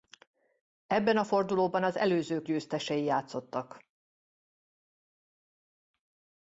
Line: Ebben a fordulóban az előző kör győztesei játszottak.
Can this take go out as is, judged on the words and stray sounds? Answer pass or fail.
fail